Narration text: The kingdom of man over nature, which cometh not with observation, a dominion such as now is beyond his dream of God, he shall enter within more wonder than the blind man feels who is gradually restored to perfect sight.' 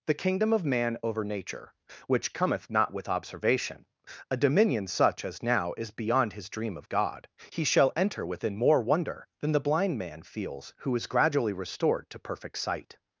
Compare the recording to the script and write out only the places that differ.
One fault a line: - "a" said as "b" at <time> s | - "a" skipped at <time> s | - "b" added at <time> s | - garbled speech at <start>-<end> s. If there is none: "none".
none